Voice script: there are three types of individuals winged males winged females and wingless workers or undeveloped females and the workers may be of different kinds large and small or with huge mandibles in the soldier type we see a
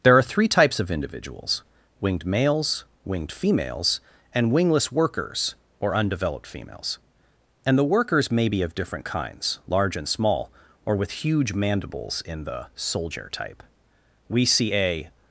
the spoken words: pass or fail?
pass